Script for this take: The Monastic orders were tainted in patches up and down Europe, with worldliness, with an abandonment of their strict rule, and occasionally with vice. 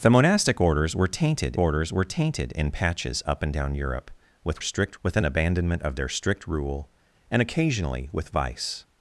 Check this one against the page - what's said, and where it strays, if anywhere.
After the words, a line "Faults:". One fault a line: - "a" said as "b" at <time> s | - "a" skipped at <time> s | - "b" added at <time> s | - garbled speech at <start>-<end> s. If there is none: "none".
The Monastic orders were tainted orders were tainted in patches up and down Europe, with strict, with an abandonment of their strict rule, and occasionally with vice.
Faults:
- "orders were tainted" added at 1.6 s
- "worldliness" said as "strict" at 4.6 s